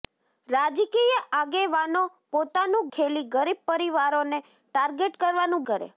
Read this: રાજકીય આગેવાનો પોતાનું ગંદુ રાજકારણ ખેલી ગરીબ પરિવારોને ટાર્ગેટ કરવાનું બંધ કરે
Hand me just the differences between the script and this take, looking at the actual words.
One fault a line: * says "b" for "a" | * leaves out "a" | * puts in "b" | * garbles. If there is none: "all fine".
* leaves out "ગંદુ રાજકારણ"
* leaves out "બંધ"